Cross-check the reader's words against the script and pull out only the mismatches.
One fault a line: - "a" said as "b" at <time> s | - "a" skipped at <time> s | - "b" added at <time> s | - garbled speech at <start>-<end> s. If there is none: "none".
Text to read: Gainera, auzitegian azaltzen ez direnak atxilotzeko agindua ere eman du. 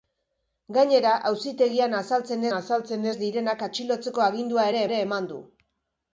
- "azaltzen" added at 2.6 s
- "ere" added at 4.9 s